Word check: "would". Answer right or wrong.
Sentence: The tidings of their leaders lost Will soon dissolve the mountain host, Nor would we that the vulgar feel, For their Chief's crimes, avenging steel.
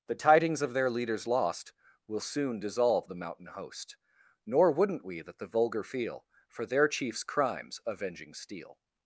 wrong